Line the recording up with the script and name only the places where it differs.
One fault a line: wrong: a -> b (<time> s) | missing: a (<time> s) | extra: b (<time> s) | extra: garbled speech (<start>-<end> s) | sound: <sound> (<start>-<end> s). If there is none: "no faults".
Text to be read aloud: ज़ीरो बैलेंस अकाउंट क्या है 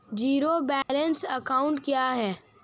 sound: dropout (0.8-0.9 s)